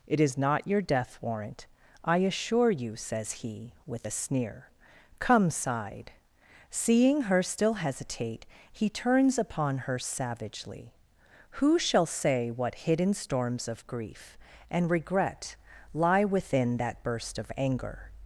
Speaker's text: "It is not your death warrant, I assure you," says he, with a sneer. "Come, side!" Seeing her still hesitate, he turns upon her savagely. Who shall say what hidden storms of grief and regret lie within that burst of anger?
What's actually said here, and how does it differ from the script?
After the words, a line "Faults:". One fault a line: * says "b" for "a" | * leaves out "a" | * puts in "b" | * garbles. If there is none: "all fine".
"It is not your death warrant, I assure you," says he, with a sneer. "Come, side!" Seeing her still hesitate, he turns upon her savagely. Who shall say what hidden storms of grief and regret lie within that burst of anger?
Faults:
all fine